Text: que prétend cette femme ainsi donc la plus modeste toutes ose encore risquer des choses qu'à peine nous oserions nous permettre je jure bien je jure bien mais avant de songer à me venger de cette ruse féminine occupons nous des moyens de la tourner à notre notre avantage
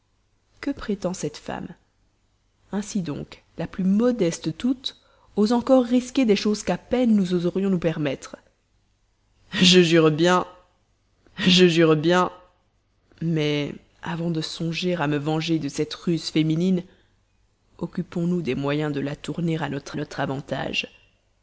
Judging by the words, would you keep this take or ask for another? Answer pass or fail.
pass